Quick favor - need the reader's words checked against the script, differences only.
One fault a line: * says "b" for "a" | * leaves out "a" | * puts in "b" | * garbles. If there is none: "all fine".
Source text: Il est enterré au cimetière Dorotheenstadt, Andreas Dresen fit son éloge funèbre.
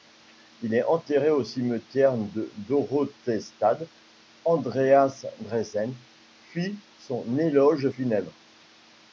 * puts in "de"